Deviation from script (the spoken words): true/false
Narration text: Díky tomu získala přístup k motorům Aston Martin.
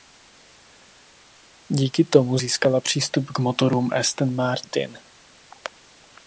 false